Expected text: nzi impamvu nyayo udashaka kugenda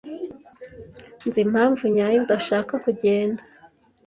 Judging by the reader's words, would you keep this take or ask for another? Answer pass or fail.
pass